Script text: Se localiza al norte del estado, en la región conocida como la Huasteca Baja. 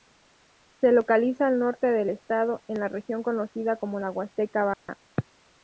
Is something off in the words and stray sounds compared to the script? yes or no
yes